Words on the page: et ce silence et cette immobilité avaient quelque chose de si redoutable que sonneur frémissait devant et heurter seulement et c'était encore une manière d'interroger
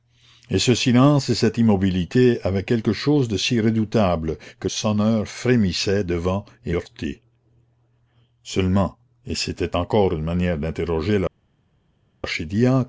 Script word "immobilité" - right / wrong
right